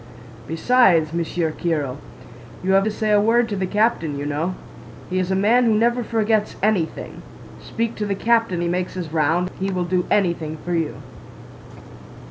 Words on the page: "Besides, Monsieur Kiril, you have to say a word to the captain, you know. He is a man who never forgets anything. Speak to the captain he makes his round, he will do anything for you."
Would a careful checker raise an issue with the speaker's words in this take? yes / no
no